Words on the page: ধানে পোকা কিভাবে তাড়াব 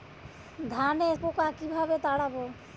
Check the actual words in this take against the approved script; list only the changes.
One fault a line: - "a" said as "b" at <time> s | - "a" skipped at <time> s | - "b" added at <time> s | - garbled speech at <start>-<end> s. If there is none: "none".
none